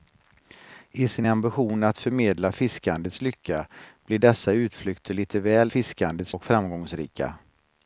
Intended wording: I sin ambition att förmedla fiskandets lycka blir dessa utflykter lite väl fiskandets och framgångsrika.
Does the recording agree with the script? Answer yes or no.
yes